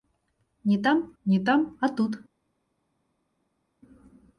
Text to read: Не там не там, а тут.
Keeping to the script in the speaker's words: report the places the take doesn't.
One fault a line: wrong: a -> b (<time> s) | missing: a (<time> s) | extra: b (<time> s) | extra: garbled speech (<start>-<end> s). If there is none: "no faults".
no faults